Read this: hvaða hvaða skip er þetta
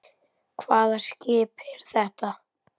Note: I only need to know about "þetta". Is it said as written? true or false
true